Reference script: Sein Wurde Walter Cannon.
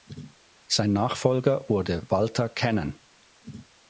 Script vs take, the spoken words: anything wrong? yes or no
yes